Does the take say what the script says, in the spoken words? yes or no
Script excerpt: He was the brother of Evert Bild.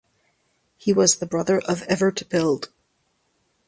yes